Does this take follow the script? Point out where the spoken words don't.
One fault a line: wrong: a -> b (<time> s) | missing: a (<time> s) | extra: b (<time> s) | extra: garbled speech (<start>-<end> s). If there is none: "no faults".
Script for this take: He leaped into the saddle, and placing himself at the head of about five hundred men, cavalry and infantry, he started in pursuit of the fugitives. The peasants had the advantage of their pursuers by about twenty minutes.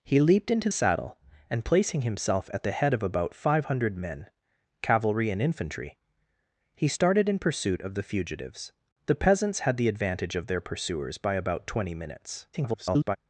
missing: the (0.7 s)
extra: garbled speech (12.5-13.2 s)